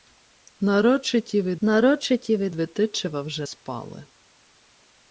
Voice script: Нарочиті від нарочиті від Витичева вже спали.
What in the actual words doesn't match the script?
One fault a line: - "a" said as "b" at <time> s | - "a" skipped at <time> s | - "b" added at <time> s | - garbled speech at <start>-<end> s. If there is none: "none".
none